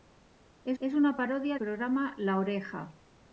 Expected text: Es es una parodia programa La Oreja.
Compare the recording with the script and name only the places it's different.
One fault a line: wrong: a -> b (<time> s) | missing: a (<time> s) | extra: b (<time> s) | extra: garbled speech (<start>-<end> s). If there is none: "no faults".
no faults